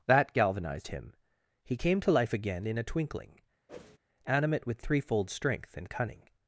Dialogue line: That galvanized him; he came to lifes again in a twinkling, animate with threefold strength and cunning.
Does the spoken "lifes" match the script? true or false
false